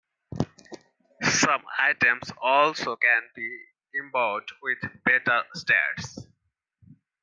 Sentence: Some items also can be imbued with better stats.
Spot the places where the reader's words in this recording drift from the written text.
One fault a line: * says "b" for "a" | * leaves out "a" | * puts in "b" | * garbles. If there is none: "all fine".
all fine